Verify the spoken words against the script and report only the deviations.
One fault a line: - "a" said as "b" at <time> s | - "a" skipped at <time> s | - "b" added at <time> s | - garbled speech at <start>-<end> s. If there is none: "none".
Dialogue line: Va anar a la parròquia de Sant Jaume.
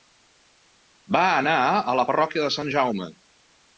none